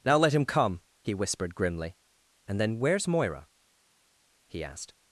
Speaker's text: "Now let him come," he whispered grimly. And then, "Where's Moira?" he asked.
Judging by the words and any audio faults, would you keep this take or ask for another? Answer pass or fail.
pass